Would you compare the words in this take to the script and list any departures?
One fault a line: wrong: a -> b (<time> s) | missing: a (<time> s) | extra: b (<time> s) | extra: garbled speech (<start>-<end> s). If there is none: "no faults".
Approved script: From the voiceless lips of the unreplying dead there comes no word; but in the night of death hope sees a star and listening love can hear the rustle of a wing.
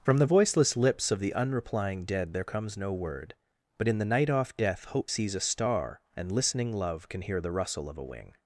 wrong: of -> off (4.3 s)